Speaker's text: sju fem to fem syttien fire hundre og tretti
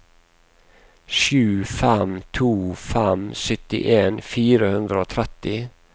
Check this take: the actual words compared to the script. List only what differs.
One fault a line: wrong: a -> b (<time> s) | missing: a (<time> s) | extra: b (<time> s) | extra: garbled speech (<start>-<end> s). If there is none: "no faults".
no faults